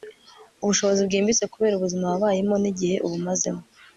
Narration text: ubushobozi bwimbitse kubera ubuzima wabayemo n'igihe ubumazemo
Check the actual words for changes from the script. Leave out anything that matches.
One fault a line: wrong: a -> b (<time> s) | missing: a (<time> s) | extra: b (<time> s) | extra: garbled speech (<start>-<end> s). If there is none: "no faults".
no faults